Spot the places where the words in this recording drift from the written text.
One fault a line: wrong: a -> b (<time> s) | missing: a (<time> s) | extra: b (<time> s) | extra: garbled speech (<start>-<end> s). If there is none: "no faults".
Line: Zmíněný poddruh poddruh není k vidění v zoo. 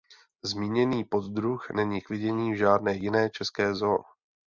missing: poddruh (1.7 s)
extra: žádné jiné české (2.6 s)